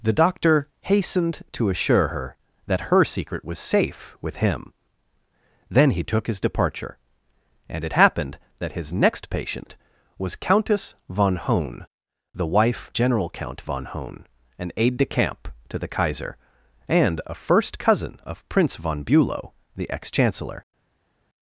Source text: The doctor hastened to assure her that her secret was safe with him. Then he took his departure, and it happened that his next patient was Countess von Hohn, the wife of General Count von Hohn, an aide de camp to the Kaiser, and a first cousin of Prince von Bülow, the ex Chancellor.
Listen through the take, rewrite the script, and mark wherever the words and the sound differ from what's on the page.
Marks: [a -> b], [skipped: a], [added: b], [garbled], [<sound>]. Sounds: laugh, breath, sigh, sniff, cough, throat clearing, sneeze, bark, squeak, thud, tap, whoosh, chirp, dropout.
The doctor hastened to assure her that her secret was safe with him. Then he took his departure, and it happened that his next patient was Countess von Hohn, the wife [skipped: of] General Count von Hohn, an aide de camp to the Kaiser, and a first cousin of Prince von Bülow, the ex Chancellor.